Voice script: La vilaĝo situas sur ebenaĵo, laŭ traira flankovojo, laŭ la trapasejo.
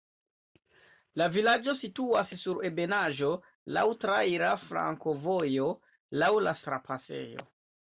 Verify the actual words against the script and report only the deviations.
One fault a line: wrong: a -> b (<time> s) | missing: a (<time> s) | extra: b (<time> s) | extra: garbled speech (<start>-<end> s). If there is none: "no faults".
no faults